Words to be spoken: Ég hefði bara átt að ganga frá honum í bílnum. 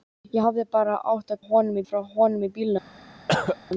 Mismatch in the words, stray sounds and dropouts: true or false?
true